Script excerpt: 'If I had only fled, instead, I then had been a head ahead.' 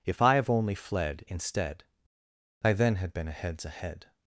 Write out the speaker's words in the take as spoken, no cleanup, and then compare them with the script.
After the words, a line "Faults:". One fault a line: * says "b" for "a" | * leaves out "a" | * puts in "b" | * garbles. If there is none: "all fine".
'If I have only fled, instead, I then had been a heads ahead.'
Faults:
* says "have" for "had"
* says "heads" for "head"